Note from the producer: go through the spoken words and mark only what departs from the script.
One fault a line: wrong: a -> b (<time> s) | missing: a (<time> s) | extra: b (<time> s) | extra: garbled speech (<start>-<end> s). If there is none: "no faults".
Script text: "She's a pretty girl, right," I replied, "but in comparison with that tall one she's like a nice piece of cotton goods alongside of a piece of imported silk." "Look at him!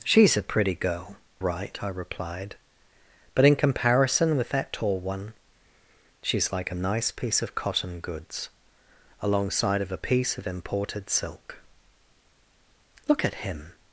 no faults